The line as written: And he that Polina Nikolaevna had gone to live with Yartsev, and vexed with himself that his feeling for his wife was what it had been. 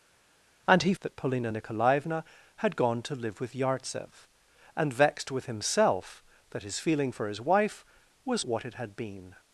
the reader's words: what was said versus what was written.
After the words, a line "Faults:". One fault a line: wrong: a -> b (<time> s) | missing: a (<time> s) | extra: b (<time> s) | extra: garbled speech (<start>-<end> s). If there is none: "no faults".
And he that Polina Nikolaevna had gone to live with Yartsev, and vexed with himself that his feeling for his wife was what it had been.
Faults:
no faults